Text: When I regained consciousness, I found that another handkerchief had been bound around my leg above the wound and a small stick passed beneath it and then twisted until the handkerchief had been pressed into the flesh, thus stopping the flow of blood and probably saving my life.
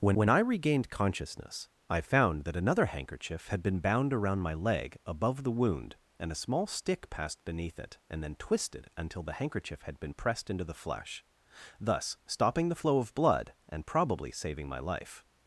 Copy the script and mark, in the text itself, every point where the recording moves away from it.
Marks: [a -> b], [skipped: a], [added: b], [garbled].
When [added: when] I regained consciousness, I found that another handkerchief had been bound around my leg above the wound and a small stick passed beneath it and then twisted until the handkerchief had been pressed into the flesh, thus stopping the flow of blood and probably saving my life.